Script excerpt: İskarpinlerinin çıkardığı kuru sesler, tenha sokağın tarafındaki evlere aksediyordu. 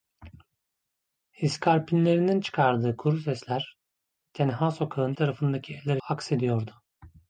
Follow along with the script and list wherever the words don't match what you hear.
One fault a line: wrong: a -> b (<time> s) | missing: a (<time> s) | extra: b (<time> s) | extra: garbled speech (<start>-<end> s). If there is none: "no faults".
no faults